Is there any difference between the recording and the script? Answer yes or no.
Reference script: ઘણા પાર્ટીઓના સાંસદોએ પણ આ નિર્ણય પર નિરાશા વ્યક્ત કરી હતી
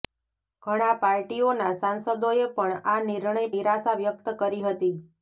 yes